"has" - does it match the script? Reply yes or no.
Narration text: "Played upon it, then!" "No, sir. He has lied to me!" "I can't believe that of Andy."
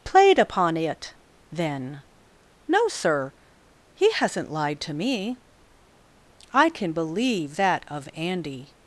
no